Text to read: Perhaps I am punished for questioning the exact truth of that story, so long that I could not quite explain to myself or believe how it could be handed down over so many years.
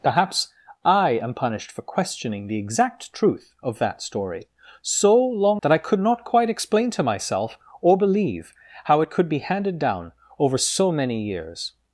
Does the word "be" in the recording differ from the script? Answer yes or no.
no